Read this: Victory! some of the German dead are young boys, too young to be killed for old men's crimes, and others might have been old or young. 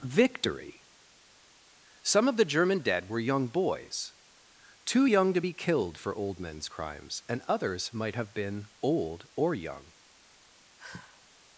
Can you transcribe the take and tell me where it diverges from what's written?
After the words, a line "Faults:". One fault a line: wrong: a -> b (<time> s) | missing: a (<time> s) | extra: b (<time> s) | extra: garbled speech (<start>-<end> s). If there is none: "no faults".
Victory! some of the German dead were young boys, too young to be killed for old men's crimes, and others might have been old or young.
Faults:
wrong: are -> were (3.1 s)